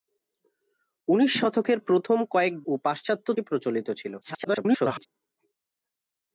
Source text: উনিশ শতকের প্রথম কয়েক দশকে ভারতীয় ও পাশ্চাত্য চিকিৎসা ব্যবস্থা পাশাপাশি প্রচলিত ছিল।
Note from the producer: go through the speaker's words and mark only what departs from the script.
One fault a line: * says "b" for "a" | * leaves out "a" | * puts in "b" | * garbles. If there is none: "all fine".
* leaves out "দশকে ভারতীয়"
* leaves out "চিকিৎসা ব্যবস্থা পাশাপাশি"
* garbles